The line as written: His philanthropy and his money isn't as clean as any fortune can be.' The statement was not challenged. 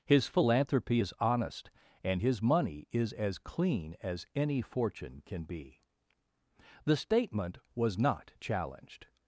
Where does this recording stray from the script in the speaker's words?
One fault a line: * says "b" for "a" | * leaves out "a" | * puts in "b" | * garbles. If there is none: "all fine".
* puts in "is honest"
* says "is" for "isn't"